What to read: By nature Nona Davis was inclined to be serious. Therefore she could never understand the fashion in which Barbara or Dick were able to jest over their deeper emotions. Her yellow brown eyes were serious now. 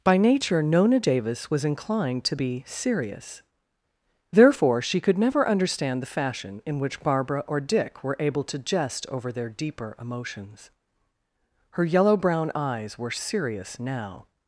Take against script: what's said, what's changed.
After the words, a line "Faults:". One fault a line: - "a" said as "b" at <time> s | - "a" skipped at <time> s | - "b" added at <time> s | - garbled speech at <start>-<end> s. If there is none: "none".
By nature Nona Davis was inclined to be serious. Therefore she could never understand the fashion in which Barbara or Dick were able to jest over their deeper emotions. Her yellow brown eyes were serious now.
Faults:
none